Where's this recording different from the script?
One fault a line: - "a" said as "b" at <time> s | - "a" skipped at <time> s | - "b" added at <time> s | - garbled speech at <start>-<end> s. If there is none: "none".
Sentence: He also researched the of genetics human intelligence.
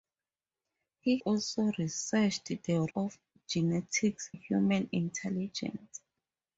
none